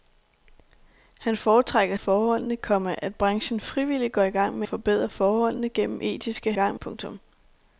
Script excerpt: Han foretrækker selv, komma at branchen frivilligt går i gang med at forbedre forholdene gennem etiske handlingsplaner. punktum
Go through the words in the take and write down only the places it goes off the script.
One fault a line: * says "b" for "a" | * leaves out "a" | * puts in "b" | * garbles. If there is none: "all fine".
* says "forholdene" for "selv"
* leaves out "at"
* says "gang" for "handlingsplaner"